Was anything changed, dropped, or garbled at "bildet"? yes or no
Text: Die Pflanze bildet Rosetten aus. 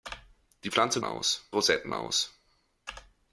yes